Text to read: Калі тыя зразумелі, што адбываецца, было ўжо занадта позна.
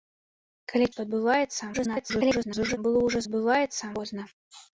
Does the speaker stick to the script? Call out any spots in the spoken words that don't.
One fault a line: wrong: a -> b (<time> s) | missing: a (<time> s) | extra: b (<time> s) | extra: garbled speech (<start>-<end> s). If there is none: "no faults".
missing: тыя зразумелі (0.9 s)
extra: garbled speech (1.7-2.8 s)
wrong: занадта -> адбываецца (3.3 s)